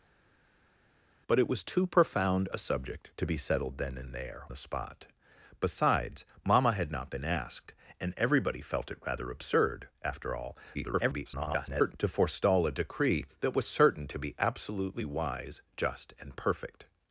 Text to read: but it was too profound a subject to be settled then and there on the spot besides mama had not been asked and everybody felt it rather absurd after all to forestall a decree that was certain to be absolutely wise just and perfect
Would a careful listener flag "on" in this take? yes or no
yes